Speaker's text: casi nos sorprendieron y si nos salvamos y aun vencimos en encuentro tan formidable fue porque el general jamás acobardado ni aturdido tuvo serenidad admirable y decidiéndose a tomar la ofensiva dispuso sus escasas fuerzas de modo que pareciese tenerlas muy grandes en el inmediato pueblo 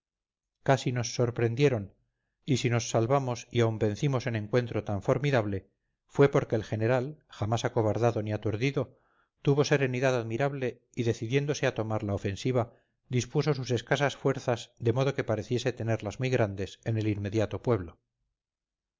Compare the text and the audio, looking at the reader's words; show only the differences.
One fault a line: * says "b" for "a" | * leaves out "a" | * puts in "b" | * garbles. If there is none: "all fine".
all fine